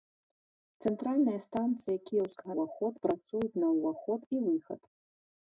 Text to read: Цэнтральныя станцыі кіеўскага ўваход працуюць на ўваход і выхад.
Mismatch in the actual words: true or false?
false